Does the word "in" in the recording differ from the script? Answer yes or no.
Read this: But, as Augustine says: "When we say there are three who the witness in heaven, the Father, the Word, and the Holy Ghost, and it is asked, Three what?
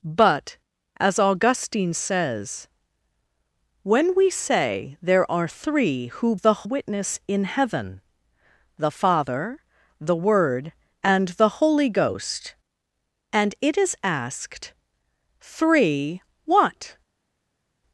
no